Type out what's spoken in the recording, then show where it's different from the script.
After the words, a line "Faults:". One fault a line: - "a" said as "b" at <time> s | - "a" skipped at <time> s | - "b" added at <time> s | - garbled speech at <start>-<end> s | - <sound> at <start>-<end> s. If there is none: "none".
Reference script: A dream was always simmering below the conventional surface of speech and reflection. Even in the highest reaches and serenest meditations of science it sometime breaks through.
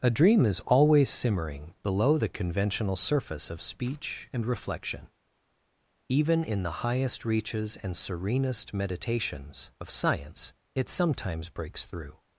A dream is always simmering below the conventional surface of speech and reflection. Even in the highest reaches and serenest meditations of science it sometimes breaks through.
Faults:
- "was" said as "is" at 0.5 s
- "sometime" said as "sometimes" at 10.9 s